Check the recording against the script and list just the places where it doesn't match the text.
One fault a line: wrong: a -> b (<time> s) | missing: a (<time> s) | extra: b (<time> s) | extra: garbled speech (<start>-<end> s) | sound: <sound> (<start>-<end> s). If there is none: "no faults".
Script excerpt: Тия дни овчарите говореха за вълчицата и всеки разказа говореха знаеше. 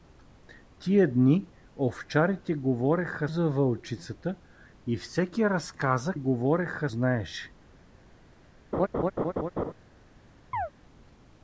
sound: laugh (8.7-9.7 s)
sound: chirp (10.5-10.7 s)